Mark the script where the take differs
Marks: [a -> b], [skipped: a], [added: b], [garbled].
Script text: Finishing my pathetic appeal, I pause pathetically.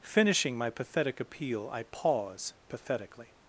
Finishing my pathetic appeal, I pause pathetically.